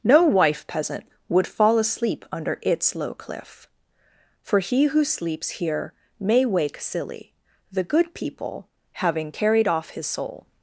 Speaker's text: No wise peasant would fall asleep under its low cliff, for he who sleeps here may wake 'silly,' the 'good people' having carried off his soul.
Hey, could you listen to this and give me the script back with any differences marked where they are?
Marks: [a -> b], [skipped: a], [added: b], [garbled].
No [wise -> wife] peasant would fall asleep under its low cliff, for he who sleeps here may wake 'silly,' the 'good people' having carried off his soul.